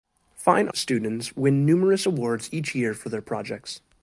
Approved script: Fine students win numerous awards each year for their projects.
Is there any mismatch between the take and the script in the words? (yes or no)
no